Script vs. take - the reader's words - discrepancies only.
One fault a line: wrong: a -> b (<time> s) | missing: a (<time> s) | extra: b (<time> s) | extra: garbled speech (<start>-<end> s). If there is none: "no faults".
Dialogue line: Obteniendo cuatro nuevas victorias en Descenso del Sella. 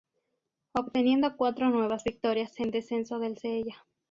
no faults